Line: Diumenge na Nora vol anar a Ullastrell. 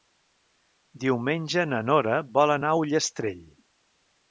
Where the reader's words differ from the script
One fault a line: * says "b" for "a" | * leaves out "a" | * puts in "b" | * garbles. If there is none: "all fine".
all fine